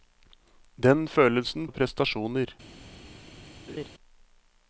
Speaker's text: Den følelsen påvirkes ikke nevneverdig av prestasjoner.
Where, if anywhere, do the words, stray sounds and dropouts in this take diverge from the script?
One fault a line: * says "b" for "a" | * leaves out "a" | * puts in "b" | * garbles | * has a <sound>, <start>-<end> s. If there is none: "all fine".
* leaves out "påvirkes ikke nevneverdig"
* has a laugh, 3.7-3.9 s